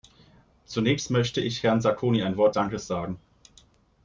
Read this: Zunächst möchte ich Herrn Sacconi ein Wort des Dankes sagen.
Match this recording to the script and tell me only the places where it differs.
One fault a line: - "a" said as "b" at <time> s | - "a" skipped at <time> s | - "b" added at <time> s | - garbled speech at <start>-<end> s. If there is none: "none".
- "des" skipped at 2.5 s